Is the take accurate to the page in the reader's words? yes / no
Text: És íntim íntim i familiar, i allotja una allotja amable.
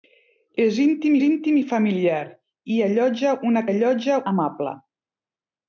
yes